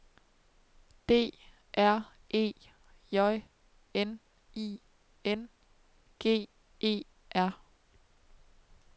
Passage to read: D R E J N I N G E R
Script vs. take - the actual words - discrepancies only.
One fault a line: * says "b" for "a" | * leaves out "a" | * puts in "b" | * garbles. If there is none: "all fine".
all fine